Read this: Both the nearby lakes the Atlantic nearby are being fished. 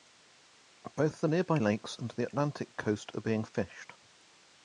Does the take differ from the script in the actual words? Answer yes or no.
yes